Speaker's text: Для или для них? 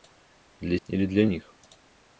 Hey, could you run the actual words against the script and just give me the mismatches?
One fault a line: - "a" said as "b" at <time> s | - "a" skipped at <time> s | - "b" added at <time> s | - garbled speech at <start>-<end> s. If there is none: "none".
none